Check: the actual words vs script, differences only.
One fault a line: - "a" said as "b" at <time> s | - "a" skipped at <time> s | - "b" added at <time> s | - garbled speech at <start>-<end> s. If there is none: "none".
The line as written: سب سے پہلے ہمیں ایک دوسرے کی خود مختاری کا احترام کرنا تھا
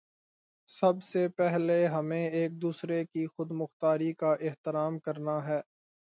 - "تھا" said as "ہے" at 5.5 s